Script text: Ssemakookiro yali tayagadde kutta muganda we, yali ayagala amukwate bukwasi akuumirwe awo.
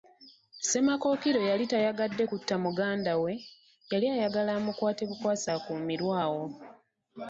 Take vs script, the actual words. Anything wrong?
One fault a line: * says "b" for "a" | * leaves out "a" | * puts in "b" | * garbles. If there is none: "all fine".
all fine